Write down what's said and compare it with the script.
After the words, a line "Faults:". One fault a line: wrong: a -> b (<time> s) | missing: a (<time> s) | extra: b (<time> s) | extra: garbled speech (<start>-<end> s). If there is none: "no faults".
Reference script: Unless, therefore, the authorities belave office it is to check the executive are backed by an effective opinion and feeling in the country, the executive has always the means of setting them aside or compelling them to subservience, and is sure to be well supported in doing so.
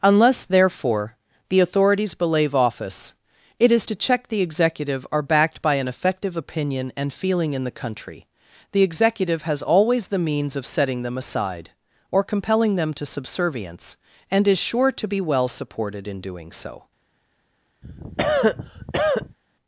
Unless, therefore, the authorities belave office it is to check the executive are backed by an effective opinion and feeling in the country, the executive has always the means of setting them aside or compelling them to subservience, and is sure to be well supported in doing so.
Faults:
no faults